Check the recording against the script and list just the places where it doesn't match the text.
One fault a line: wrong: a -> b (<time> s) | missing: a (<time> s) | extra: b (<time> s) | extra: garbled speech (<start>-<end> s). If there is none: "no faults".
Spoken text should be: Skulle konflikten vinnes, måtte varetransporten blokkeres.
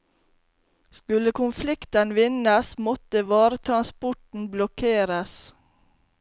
no faults